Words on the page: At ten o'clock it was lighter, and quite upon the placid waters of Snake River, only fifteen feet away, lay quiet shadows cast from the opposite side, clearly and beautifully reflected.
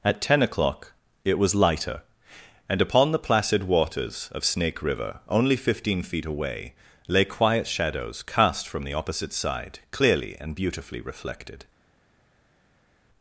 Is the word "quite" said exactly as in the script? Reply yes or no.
no